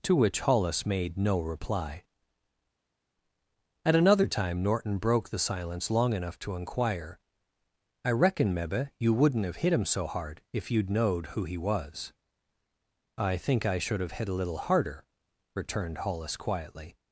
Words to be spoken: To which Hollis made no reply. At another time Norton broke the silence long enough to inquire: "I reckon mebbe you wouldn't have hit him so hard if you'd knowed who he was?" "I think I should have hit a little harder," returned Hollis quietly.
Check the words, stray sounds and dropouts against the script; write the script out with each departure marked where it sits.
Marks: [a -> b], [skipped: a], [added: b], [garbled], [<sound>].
To which Hollis made no reply. At another time Norton broke the silence long enough to inquire: "I reckon mebbe you wouldn't have hit him so hard if you'd knowed who he was?" "I think I should have hit a little harder," returned Hollis quietly.